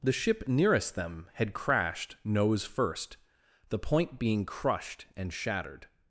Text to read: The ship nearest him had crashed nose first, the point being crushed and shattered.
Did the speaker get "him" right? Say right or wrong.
wrong